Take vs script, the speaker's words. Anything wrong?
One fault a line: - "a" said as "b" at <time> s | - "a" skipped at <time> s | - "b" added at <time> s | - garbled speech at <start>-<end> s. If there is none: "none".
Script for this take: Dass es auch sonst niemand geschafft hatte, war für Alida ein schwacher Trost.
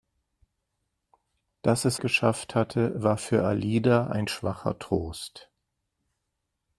- "auch sonst niemand" skipped at 2.0 s